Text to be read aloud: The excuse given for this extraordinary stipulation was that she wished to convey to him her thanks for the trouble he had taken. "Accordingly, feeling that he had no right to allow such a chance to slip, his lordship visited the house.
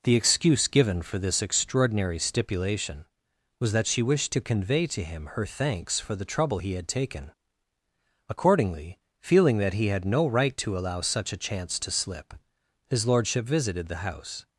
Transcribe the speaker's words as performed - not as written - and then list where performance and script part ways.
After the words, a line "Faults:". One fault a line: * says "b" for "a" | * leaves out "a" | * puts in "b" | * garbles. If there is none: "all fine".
The excuse given for this extraordinary stipulation was that she wished to convey to him her thanks for the trouble he had taken. "Accordingly, feeling that he had no right to allow such a chance to slip, his lordship visited the house.
Faults:
all fine